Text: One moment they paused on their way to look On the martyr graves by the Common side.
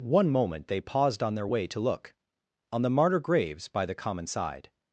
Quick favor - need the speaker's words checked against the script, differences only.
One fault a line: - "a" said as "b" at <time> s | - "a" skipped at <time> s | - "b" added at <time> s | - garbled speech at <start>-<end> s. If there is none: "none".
none